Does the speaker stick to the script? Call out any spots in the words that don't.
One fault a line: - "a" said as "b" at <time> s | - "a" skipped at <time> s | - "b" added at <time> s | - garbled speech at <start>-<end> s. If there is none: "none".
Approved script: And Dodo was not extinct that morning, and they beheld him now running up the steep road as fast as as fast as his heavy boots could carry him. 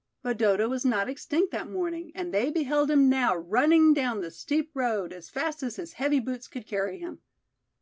- "And" said as "But" at 0.2 s
- "up" said as "down" at 3.9 s
- "as fast as" skipped at 5.7 s